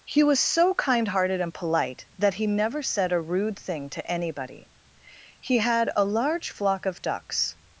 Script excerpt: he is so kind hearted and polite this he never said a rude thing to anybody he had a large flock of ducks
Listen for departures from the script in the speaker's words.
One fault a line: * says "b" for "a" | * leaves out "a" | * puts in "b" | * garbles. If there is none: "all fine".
* says "was" for "is"
* says "that" for "this"